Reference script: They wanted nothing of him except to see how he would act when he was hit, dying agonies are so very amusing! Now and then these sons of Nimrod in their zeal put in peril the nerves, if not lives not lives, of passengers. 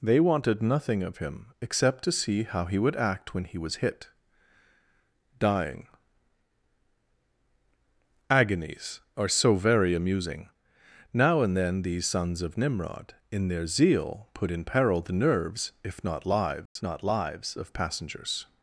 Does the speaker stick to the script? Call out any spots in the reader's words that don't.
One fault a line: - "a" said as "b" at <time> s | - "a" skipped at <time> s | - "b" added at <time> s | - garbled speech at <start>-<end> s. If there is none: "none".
none